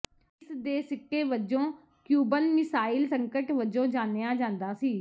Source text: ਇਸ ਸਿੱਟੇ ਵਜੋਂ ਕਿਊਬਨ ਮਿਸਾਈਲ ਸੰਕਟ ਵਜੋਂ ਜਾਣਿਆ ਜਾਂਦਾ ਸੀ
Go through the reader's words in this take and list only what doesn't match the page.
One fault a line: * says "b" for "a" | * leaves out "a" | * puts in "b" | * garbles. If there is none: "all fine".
* puts in "ਦੇ"